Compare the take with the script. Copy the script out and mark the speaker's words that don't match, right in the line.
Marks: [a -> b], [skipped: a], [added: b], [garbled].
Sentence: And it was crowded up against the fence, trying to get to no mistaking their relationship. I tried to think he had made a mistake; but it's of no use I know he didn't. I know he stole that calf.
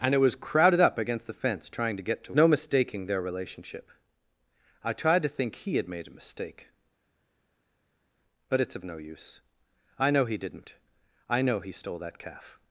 And it was crowded up against the fence, trying to get to no mistaking their relationship. I tried to think he had made a mistake; but it's of no use I know he didn't. I know he stole that calf.